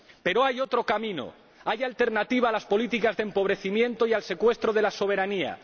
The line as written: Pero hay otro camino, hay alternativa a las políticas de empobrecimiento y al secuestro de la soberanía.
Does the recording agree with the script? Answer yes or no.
yes